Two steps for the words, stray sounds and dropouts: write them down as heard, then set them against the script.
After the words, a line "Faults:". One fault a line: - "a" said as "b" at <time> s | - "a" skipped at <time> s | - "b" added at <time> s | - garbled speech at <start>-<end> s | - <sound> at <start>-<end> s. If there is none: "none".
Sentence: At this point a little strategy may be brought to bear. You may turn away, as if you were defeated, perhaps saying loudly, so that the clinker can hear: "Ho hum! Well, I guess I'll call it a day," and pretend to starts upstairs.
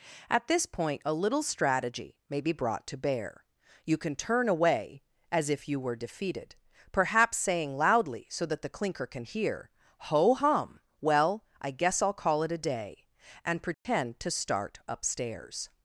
At this point a little strategy may be brought to bear. You can turn away, as if you were defeated, perhaps saying loudly, so that the clinker can hear: "Ho hum! Well, I guess I'll call it a day," and pretend to start upstairs.
Faults:
- "may" said as "can" at 4.0 s
- dropout at 13.7-13.9 s
- "starts" said as "start" at 14.3 s